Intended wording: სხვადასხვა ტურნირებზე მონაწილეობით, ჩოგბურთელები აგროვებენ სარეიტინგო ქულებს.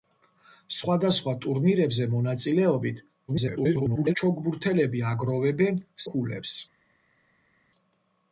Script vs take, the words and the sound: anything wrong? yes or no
yes